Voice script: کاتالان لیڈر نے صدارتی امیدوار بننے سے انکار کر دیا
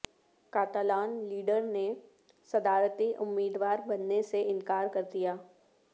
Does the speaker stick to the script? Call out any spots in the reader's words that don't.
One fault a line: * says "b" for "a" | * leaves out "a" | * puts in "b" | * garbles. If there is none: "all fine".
all fine